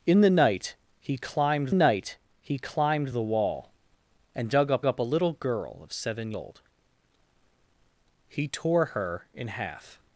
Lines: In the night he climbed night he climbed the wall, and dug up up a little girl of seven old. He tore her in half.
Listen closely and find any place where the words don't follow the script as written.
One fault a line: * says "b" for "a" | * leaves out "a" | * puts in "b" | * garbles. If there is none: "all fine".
all fine